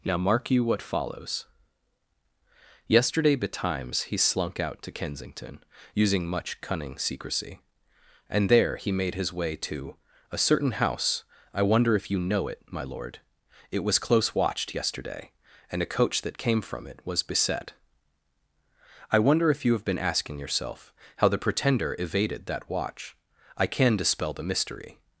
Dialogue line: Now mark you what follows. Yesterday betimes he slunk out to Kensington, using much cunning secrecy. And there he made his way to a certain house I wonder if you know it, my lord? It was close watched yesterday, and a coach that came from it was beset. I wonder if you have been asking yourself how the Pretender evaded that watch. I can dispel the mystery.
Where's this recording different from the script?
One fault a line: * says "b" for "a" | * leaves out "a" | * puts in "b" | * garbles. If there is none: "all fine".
all fine